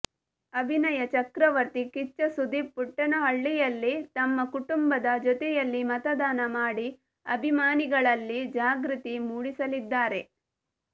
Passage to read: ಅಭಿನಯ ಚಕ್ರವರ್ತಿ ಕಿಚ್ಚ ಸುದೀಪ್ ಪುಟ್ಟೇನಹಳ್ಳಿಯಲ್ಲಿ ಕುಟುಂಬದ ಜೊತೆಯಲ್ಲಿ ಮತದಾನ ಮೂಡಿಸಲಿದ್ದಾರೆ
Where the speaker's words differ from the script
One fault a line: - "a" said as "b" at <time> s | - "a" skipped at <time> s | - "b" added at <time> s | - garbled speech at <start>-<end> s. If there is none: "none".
- "ತಮ್ಮ" added at 4.2 s
- "ಮಾಡಿ ಅಭಿಮಾನಿಗಳಲ್ಲಿ ಜಾಗೃತಿ" added at 6.6 s